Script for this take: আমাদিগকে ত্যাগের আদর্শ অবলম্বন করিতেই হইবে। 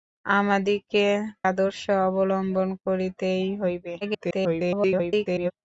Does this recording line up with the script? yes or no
no